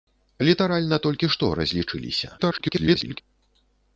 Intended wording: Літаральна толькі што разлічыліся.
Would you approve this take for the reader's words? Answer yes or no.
no